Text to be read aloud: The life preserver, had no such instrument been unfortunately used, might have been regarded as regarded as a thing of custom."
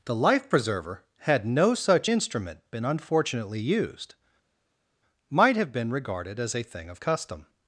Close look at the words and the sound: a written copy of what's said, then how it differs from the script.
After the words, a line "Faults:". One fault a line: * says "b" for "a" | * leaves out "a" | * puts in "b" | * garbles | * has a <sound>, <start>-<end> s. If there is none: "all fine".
The life preserver, had no such instrument been unfortunately used, might have been regarded as a thing of custom."
Faults:
* leaves out "regarded as"